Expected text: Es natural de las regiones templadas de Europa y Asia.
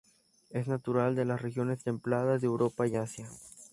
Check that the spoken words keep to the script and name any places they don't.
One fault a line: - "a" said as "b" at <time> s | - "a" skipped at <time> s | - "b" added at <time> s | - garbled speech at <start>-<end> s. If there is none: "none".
none